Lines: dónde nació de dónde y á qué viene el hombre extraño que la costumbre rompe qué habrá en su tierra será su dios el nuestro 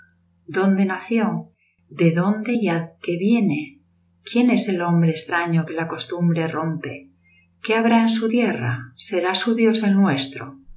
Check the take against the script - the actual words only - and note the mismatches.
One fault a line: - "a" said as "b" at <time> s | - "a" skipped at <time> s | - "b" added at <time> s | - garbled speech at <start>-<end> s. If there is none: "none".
- "quién es" added at 4.2 s